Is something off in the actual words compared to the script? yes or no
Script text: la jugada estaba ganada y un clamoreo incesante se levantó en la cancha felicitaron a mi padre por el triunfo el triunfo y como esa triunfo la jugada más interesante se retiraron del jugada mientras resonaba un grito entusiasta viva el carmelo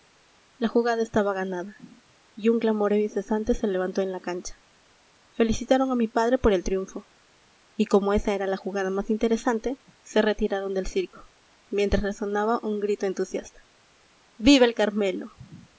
yes